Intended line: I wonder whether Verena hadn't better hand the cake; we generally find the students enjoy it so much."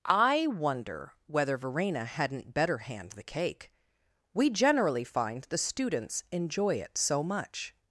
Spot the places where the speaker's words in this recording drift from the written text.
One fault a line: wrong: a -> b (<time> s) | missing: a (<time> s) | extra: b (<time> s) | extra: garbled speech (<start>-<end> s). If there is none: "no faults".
no faults